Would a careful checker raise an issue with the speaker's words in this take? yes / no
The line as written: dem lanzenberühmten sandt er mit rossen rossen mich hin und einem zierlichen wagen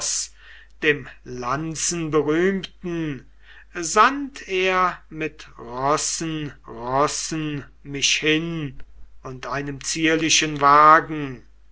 no